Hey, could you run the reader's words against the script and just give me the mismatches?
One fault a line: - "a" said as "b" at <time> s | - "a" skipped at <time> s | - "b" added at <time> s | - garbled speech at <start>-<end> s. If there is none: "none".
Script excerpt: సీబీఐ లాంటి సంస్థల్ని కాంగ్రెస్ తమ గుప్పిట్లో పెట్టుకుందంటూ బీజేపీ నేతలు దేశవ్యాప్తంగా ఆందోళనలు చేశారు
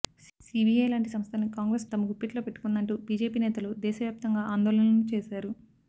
none